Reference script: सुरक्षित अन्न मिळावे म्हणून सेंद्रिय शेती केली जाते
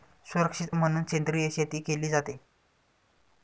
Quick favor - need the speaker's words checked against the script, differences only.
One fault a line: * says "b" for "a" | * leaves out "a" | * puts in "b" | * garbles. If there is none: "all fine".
* leaves out "अन्न मिळावे"